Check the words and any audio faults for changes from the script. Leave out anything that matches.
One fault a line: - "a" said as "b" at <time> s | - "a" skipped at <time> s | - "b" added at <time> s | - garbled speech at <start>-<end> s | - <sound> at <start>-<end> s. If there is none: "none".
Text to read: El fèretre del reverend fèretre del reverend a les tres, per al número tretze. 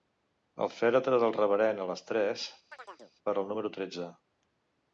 - "fèretre del reverend" skipped at 1.9 s
- chirp at 2.7-3.1 s